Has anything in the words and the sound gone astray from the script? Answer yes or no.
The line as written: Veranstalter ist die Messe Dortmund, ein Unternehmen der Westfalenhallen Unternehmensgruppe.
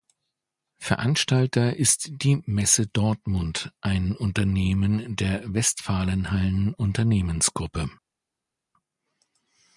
no